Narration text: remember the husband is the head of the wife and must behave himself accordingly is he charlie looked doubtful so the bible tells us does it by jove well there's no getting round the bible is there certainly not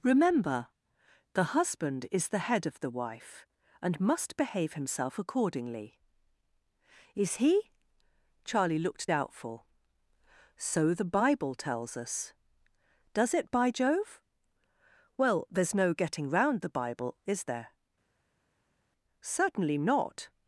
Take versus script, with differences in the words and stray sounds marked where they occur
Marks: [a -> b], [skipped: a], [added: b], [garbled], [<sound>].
remember the husband is the head of the wife and must behave himself accordingly is he charlie looked doubtful so the bible tells us does it by jove well there's no getting round the bible is there certainly not